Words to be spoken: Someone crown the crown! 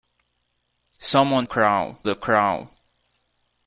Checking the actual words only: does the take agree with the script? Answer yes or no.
yes